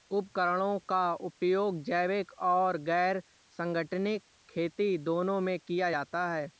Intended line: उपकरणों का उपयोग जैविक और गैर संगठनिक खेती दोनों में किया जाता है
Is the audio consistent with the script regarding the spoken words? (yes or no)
yes